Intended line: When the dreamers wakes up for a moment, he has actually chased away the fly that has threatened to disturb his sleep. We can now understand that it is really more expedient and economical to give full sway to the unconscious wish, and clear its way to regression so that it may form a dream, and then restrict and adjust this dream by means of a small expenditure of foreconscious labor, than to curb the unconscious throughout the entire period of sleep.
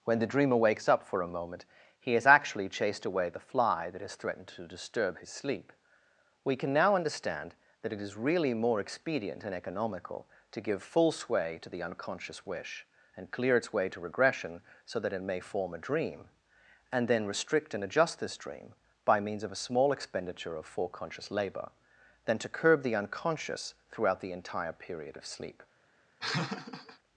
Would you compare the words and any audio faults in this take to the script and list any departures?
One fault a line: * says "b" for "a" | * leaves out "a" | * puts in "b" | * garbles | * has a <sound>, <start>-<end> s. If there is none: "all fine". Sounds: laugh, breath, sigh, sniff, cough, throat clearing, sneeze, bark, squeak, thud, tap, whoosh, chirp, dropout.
* says "dreamer" for "dreamers"
* has a laugh, 26.2-27.0 s